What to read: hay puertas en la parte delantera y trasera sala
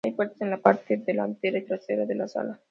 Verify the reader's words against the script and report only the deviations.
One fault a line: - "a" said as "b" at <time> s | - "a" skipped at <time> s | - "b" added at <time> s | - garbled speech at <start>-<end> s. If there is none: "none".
- "de la" added at 2.0 s